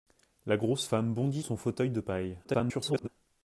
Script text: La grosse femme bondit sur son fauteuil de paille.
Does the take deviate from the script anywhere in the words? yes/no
yes